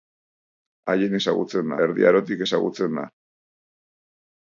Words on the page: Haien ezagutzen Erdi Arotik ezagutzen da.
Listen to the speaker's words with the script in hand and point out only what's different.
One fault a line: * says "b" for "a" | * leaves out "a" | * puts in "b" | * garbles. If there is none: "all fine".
all fine